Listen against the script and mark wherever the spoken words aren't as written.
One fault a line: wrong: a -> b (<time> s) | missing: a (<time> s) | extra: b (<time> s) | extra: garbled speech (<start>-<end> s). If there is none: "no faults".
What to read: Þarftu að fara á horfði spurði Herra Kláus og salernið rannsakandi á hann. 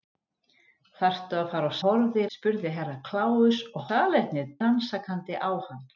no faults